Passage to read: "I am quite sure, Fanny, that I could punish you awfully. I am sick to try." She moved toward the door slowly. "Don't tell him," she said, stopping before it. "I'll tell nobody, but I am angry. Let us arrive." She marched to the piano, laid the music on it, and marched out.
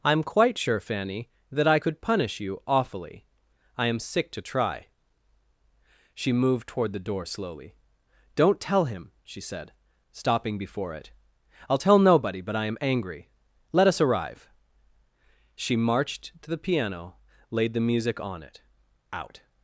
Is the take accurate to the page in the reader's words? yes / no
no